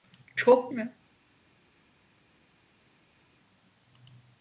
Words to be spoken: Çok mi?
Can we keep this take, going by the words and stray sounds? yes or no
yes